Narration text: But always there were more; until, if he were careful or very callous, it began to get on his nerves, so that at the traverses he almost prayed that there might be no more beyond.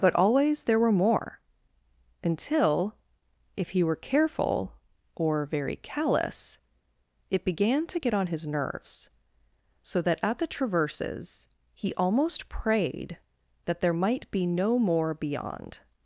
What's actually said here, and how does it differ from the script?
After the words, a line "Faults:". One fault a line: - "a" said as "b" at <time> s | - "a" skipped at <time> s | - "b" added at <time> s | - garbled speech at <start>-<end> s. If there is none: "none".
But always there were more; until, if he were careful or very callous, it began to get on his nerves, so that at the traverses he almost prayed that there might be no more beyond.
Faults:
none